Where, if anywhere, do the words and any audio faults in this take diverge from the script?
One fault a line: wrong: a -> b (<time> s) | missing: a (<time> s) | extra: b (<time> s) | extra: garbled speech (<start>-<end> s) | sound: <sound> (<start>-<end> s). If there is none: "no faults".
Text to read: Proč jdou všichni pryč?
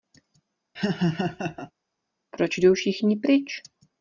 sound: laugh (0.7-1.7 s)